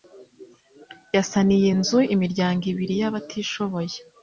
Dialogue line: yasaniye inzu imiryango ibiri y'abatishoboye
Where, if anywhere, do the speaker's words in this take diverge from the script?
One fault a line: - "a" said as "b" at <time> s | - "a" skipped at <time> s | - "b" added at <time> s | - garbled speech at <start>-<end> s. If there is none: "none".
none